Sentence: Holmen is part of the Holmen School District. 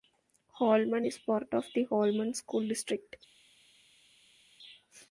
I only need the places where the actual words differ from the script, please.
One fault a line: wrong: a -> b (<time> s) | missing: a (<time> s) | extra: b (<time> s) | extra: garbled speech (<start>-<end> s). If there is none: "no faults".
no faults